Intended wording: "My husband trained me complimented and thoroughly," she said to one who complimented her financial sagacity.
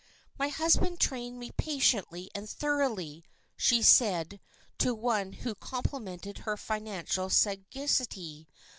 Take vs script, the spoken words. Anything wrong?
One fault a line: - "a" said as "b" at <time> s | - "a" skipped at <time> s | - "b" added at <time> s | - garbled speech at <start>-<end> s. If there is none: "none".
- "complimented" said as "patiently" at 1.6 s